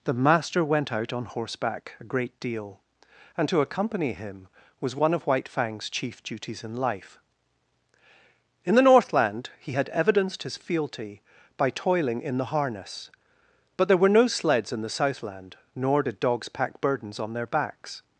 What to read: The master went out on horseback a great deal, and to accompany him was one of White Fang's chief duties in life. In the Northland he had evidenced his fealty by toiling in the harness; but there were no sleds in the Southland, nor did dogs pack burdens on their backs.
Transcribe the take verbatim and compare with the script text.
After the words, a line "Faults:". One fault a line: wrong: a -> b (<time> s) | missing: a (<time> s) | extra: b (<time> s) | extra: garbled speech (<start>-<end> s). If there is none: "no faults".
The master went out on horseback a great deal, and to accompany him was one of White Fang's chief duties in life. In the Northland he had evidenced his fealty by toiling in the harness; but there were no sleds in the Southland, nor did dogs pack burdens on their backs.
Faults:
no faults